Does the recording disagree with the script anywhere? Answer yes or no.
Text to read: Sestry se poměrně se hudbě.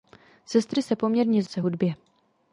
no